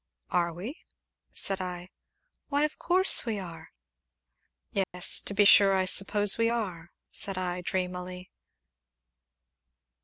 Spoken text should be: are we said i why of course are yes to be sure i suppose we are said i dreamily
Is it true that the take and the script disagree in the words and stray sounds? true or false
true